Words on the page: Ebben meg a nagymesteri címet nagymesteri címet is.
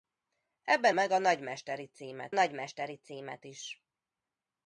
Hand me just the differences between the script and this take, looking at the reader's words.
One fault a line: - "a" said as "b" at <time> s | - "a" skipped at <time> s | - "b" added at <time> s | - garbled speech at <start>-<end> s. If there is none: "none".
none